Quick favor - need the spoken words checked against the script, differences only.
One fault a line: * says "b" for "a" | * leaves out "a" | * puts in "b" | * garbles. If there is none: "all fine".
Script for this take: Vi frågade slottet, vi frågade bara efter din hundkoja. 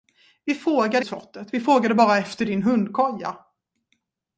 all fine